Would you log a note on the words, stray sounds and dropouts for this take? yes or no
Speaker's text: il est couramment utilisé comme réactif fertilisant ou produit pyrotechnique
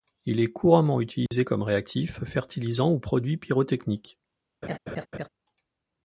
yes